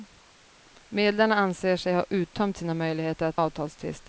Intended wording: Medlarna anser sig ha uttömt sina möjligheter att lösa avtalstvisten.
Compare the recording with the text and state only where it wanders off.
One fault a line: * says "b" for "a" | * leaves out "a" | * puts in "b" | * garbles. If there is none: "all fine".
* leaves out "lösa"